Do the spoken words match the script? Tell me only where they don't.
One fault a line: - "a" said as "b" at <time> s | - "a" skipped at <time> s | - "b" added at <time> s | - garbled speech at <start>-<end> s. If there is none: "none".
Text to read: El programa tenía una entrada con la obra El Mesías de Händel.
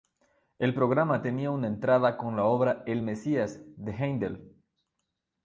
none